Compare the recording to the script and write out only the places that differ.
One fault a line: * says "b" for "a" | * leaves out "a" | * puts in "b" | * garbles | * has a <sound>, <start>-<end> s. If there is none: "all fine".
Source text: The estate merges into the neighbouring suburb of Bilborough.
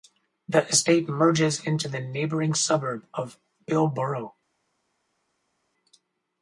all fine